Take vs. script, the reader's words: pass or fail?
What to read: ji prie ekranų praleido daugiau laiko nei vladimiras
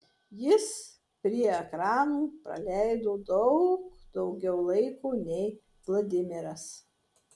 fail